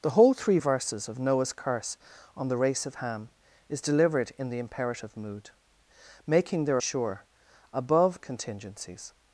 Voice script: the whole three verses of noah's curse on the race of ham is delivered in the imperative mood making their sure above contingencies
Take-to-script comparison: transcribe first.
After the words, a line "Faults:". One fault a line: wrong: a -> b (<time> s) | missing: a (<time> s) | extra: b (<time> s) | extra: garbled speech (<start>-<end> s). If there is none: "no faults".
the whole three verses of noah's curse on the race of ham is delivered in the imperative mood making their sure above contingencies
Faults:
no faults